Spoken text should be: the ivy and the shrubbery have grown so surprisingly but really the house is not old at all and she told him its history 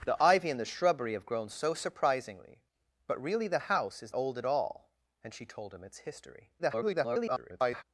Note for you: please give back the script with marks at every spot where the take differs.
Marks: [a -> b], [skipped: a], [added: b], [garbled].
the ivy and the shrubbery have grown so surprisingly but really the house is [skipped: not] old at all and she told him its history [garbled]